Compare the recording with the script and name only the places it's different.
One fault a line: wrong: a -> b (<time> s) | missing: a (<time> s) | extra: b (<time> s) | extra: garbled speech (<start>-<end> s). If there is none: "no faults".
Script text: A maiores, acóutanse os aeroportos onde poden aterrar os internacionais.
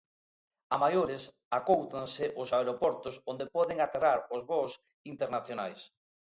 extra: voos (4.5 s)